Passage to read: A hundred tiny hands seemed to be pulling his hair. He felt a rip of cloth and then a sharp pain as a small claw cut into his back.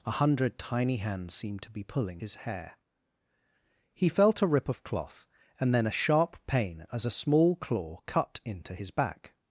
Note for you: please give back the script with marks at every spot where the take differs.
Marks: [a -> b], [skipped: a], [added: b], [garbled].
A hundred tiny hands seemed to be pulling his hair. He felt a rip of cloth and then a sharp pain as a small claw cut into his back.